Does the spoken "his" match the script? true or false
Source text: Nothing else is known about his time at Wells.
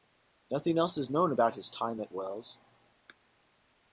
true